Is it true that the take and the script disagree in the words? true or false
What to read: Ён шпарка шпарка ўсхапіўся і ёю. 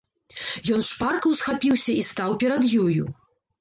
true